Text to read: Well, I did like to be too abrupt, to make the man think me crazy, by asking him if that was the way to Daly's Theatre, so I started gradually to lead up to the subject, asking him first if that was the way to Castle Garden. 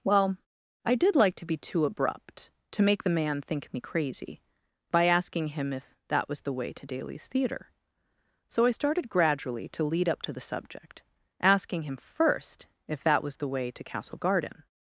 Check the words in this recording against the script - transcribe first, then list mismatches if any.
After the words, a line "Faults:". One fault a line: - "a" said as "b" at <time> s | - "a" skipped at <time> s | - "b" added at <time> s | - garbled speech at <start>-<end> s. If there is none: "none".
Well, I did like to be too abrupt, to make the man think me crazy, by asking him if that was the way to Daly's Theatre, so I started gradually to lead up to the subject, asking him first if that was the way to Castle Garden.
Faults:
none